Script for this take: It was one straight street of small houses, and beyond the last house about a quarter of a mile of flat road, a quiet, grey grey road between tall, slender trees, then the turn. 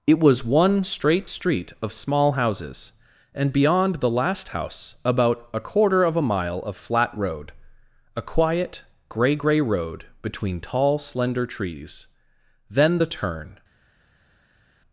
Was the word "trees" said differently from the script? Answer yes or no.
no